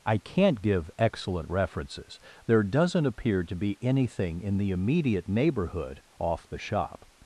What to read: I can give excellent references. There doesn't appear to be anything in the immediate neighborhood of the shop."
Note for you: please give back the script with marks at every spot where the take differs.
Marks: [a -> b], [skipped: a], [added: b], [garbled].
I [can -> can't] give excellent references. There doesn't appear to be anything in the immediate neighborhood [of -> off] the shop."